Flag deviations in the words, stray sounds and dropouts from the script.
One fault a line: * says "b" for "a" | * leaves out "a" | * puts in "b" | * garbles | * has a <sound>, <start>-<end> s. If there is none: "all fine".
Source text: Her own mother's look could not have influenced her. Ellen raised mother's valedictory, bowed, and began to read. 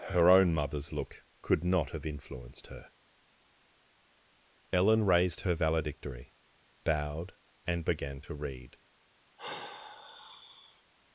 * says "her" for "mother's"
* has a sigh, 9.4-10.8 s